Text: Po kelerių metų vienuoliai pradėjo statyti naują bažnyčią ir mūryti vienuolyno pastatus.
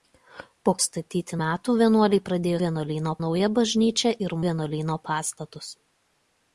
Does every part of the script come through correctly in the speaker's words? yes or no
no